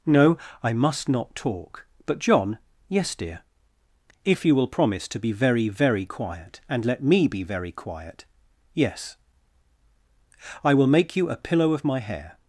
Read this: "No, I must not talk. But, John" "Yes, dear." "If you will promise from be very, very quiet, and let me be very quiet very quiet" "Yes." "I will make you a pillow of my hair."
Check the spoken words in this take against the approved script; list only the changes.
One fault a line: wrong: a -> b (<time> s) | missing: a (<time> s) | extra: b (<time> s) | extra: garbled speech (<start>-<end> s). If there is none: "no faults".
wrong: from -> to (5.1 s)
missing: very quiet (8.3 s)